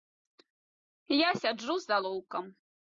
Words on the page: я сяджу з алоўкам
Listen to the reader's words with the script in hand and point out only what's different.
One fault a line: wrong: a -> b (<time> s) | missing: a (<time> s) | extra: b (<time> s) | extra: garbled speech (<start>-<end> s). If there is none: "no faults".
no faults